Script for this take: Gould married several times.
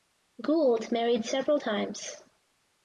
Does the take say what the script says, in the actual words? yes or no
yes